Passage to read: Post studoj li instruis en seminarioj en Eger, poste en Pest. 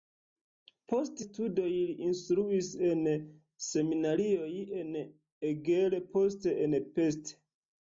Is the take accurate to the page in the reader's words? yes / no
yes